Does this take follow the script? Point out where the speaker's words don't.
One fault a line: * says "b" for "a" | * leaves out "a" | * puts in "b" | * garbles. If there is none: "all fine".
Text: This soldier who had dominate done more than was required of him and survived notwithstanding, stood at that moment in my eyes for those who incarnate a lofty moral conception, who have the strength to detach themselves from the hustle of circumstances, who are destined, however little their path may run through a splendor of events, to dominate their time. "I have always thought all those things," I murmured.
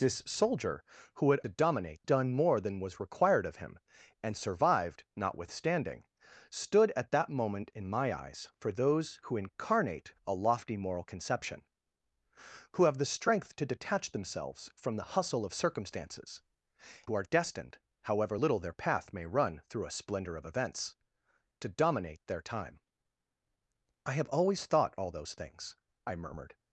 all fine